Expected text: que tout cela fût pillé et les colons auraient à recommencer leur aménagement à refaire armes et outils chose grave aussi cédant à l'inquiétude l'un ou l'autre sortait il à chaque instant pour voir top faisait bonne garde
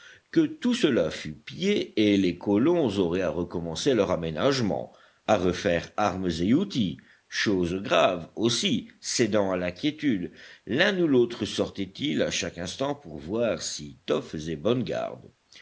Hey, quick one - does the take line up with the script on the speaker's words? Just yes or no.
no